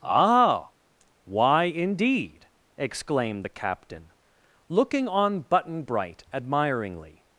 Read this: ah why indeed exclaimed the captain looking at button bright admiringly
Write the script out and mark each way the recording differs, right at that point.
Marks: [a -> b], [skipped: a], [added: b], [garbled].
ah why indeed exclaimed the captain looking [at -> on] button bright admiringly